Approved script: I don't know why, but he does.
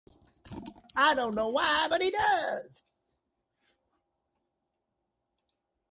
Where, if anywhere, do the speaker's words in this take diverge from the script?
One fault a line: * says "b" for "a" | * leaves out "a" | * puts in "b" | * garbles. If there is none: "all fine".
all fine